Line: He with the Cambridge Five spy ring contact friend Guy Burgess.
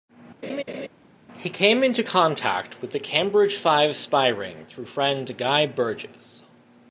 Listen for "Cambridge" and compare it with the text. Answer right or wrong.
right